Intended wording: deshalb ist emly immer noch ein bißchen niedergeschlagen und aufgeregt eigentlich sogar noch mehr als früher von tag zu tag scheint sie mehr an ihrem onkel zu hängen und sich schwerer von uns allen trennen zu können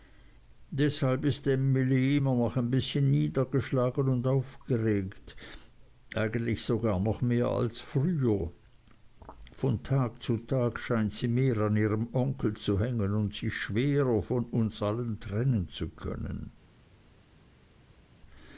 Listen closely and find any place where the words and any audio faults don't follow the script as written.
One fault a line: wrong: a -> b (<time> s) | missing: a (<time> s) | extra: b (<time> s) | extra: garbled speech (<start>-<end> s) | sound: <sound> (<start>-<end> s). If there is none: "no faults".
no faults